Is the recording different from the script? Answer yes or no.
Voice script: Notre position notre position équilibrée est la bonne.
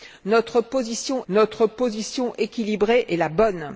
no